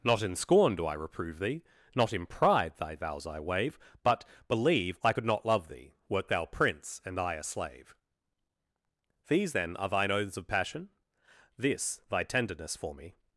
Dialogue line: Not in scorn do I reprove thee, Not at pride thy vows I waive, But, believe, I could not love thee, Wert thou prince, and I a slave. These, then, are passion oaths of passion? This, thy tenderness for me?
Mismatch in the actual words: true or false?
true